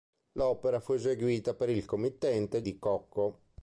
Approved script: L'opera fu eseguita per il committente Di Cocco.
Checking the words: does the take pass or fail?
pass